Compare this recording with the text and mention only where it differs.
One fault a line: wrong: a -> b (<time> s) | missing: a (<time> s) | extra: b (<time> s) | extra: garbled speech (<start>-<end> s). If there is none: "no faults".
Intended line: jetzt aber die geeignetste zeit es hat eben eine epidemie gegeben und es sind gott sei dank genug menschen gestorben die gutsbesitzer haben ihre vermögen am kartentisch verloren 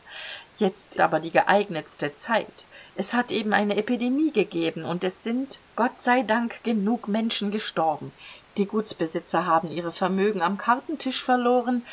no faults